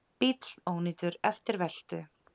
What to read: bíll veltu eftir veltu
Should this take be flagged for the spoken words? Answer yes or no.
yes